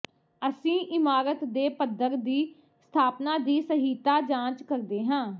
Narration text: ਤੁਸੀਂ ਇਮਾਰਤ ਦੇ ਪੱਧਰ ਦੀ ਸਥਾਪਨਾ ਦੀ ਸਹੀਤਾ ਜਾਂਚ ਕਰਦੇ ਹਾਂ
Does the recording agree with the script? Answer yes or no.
no